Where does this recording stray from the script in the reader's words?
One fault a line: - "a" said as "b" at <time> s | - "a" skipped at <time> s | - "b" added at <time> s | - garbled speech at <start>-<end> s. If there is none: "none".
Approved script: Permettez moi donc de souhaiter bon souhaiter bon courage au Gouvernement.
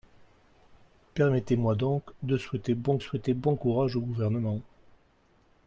none